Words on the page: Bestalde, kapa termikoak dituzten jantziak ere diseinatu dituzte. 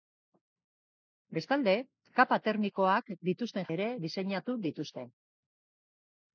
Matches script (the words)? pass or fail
fail